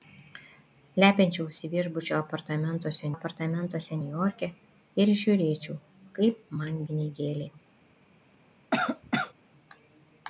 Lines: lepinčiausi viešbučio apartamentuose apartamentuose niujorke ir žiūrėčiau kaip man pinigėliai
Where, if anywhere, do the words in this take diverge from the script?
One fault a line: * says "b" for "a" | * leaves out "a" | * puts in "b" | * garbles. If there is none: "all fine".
all fine